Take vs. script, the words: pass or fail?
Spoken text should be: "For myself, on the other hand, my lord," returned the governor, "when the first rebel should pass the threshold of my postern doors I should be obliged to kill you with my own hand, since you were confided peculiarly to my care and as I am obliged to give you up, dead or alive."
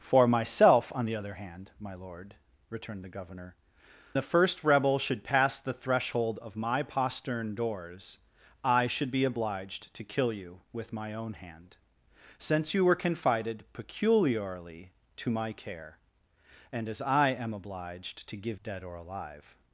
fail